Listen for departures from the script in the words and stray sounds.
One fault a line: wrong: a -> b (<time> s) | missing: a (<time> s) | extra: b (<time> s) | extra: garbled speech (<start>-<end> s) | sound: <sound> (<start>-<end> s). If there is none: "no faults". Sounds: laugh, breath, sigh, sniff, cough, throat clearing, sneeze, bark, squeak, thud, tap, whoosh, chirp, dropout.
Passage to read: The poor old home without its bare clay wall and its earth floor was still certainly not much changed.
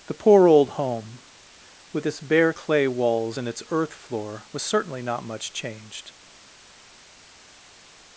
wrong: without -> with (1.9 s)
wrong: wall -> walls (2.9 s)
missing: still (4.6 s)